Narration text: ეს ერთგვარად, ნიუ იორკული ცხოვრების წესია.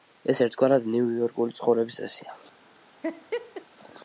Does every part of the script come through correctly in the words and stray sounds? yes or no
no